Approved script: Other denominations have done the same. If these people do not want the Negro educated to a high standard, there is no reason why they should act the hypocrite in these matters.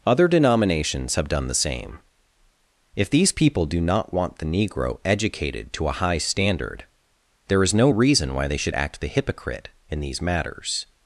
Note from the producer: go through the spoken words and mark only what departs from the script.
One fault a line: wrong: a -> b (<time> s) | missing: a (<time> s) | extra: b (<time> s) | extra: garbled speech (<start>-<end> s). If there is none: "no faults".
no faults